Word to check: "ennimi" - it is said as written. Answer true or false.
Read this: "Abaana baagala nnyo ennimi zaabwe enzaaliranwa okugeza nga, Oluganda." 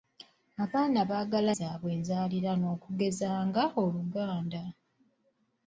false